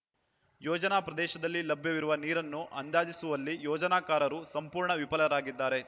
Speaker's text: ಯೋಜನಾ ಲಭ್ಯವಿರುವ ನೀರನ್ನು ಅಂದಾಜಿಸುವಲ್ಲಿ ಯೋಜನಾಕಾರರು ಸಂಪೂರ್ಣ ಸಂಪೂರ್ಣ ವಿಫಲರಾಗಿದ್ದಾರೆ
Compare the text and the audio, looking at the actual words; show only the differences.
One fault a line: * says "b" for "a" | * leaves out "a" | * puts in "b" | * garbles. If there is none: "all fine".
* puts in "ಪ್ರದೇಶದಲ್ಲಿ"
* leaves out "ಸಂಪೂರ್ಣ"